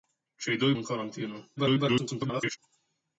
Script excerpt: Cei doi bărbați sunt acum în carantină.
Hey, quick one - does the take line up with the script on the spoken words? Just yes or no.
no